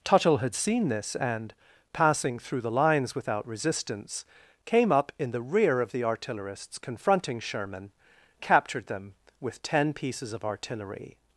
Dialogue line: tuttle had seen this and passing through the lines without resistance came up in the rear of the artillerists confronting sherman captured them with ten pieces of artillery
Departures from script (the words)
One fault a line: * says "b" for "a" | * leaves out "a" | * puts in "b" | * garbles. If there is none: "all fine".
all fine